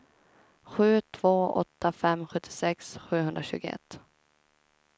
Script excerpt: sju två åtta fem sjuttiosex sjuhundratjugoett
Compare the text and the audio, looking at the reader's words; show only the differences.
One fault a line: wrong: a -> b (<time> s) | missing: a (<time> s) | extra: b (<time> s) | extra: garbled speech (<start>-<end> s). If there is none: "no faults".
no faults